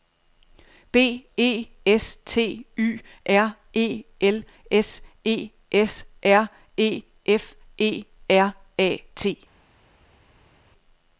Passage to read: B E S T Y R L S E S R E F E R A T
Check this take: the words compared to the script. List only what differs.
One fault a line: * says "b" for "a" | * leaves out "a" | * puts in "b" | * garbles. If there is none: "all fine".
* puts in "E"